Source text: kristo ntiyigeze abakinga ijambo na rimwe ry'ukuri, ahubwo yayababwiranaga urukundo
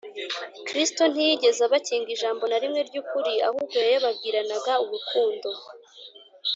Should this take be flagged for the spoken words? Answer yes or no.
no